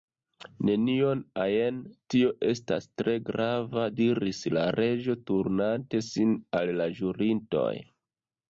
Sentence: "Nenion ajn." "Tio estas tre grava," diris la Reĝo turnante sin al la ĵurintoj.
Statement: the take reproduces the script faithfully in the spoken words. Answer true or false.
true